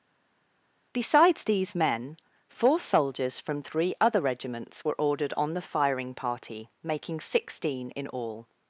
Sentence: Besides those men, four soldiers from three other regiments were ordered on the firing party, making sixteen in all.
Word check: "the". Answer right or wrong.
right